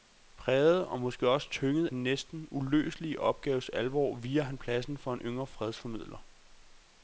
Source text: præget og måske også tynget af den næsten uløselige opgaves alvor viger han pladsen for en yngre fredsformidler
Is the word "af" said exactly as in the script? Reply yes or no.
no